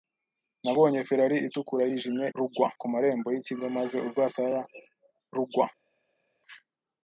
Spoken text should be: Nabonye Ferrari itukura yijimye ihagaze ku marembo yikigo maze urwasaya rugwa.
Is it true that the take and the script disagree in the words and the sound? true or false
true